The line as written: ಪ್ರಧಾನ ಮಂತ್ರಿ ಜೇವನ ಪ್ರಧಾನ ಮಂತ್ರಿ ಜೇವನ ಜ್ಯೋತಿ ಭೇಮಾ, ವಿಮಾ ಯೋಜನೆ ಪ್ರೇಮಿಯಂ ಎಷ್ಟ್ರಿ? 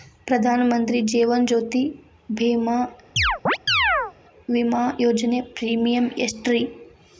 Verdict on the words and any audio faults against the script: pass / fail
fail